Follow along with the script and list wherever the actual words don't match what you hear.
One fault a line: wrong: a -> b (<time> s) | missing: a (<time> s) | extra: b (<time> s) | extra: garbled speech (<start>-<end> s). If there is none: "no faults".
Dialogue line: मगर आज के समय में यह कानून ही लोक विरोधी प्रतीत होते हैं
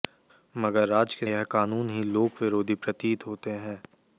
missing: समय में (1.3 s)